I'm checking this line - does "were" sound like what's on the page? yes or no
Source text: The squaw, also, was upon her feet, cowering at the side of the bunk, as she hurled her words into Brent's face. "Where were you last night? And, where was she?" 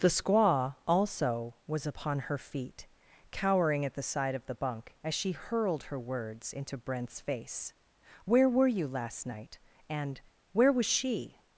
yes